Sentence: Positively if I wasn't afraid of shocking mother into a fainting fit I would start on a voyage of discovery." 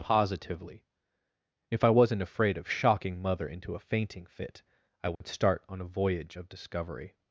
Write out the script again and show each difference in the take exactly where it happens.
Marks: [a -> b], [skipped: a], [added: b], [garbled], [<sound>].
Positively if I wasn't afraid of shocking mother into a fainting fit I would [dropout] start on a voyage of discovery."